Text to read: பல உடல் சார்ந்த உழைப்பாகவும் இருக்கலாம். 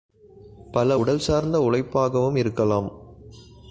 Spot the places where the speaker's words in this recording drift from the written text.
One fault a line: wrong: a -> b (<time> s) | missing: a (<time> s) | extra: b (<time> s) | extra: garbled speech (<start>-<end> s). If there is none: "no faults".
no faults